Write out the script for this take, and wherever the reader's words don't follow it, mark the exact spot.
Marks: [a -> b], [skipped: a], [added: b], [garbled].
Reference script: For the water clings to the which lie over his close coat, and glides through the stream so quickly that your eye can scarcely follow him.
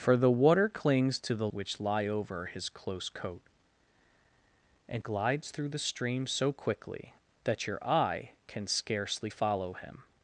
For the water clings to the which lie over his close coat, and glides through the stream so quickly that your eye can scarcely follow him.